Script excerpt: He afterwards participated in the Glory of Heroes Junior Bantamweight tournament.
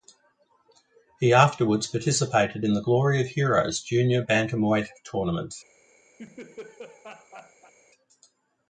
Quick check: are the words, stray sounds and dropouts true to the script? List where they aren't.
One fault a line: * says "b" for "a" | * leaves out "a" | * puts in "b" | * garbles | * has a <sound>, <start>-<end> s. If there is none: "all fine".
* has a laugh, 6.2-7.7 s